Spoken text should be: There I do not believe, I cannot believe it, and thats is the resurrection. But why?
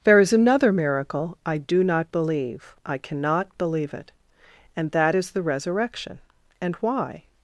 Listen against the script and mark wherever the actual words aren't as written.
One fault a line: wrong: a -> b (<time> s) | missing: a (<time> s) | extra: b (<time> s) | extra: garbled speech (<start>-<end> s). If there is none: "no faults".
extra: is another miracle (0.2 s)
wrong: thats -> that (4.9 s)
wrong: But -> And (6.6 s)